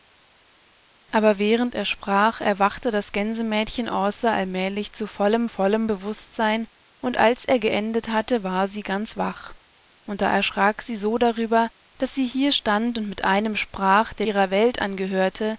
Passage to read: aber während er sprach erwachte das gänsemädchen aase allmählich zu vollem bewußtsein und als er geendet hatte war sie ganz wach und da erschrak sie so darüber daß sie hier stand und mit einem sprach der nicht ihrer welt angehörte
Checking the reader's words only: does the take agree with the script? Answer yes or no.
no